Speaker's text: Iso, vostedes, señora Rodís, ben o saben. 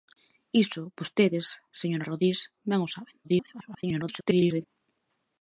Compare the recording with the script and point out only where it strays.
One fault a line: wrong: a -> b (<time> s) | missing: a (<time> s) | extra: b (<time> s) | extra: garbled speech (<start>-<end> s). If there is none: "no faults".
extra: garbled speech (3.2-4.6 s)